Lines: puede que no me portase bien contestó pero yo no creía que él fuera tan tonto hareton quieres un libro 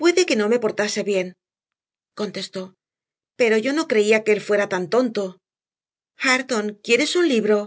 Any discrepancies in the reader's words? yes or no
no